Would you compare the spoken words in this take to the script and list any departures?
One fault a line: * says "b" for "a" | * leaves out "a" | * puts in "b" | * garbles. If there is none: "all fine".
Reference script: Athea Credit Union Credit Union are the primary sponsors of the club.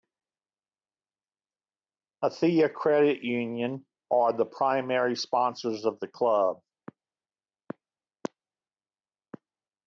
* leaves out "Credit Union"